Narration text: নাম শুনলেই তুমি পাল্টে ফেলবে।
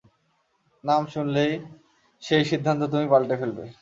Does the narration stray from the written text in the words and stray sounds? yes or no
yes